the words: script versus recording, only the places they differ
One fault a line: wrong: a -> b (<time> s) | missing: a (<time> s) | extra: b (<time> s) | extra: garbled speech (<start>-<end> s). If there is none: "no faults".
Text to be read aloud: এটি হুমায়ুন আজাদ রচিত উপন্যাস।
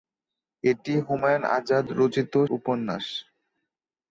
no faults